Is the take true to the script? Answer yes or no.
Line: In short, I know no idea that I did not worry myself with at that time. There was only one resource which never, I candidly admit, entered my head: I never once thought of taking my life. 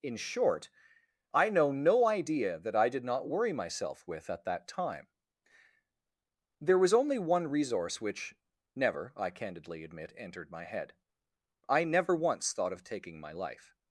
yes